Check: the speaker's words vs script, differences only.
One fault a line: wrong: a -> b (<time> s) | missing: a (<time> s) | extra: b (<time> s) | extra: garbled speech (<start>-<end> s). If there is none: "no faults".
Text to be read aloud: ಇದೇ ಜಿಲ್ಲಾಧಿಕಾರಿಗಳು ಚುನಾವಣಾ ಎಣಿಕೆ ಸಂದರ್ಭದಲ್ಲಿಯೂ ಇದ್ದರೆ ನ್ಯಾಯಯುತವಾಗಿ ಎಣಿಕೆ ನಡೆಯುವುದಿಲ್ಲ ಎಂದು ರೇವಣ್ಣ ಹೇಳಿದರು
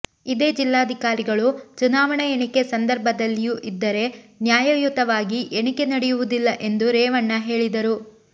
no faults